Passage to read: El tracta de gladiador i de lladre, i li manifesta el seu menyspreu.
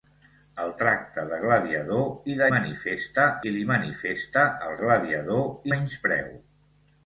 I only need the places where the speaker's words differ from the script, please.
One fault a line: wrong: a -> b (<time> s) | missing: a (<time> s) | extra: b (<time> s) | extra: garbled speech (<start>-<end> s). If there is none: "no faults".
wrong: lladre -> manifesta (2.5 s)
wrong: seu -> gladiador (4.8 s)